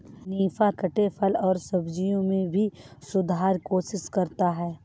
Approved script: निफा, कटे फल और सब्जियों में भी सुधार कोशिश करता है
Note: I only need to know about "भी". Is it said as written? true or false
true